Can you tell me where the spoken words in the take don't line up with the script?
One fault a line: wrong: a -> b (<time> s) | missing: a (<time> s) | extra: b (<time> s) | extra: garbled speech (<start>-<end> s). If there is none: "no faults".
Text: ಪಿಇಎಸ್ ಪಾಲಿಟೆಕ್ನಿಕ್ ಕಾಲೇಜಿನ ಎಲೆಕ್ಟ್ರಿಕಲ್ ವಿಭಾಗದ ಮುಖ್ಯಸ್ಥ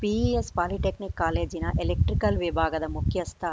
no faults